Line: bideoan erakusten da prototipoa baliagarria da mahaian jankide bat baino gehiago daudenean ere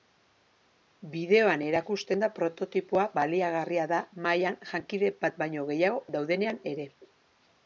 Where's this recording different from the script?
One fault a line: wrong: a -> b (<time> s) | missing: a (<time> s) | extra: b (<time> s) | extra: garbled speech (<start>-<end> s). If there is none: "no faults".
no faults